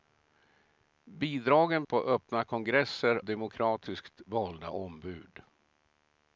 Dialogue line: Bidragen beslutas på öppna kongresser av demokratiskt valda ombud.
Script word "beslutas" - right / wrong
wrong